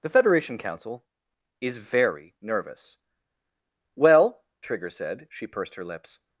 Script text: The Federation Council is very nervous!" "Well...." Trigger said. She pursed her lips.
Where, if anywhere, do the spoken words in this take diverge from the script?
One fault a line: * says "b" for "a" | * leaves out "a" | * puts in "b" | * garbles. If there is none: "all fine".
all fine